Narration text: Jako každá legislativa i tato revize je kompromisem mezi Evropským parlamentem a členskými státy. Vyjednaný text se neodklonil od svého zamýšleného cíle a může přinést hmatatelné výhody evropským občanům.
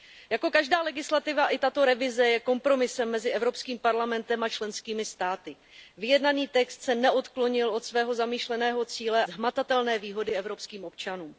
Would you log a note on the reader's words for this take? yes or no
yes